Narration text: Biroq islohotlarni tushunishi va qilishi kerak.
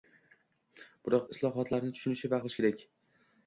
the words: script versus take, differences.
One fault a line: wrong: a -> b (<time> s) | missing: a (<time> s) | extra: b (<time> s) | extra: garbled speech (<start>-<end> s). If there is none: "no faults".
no faults